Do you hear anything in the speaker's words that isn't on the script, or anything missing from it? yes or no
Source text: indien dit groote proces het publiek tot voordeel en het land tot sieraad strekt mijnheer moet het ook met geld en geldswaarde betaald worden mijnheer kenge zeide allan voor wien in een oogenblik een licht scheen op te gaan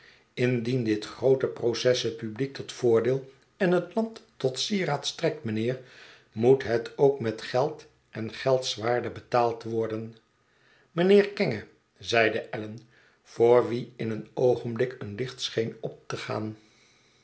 no